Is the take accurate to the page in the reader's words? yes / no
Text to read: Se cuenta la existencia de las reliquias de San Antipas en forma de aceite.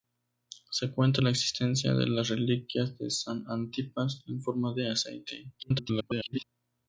no